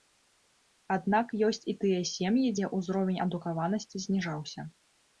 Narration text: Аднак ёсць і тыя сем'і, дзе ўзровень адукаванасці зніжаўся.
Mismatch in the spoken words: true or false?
false